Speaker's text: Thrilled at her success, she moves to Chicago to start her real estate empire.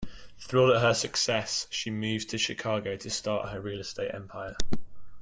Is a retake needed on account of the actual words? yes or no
no